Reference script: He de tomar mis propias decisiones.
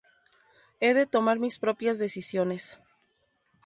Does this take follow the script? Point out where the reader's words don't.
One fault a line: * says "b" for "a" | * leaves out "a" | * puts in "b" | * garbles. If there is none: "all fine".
all fine